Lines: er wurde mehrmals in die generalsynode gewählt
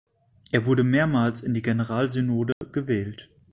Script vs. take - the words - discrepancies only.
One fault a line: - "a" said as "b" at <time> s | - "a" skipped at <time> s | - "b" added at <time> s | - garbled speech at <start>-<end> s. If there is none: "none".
none